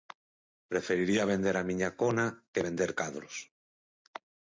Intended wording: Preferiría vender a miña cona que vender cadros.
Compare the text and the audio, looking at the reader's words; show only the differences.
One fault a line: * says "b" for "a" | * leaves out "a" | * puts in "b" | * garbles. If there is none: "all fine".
all fine